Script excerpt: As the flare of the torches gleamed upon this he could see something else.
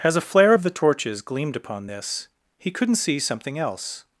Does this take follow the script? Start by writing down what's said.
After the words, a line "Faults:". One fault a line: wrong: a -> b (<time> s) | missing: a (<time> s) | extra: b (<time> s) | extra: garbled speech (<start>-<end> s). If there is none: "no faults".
As a flare of the torches gleamed upon this he couldn't see something else.
Faults:
wrong: the -> a (0.1 s)
wrong: could -> couldn't (2.7 s)